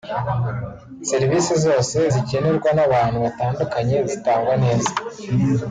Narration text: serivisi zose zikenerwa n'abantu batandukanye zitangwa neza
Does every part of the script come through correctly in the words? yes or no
yes